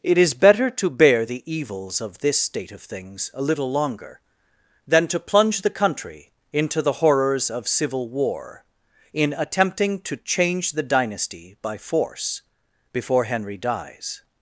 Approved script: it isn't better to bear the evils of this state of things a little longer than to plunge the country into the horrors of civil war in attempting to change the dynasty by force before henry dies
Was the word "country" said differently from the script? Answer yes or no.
no